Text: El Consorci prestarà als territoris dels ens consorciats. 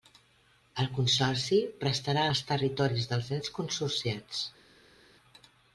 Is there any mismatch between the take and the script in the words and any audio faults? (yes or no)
no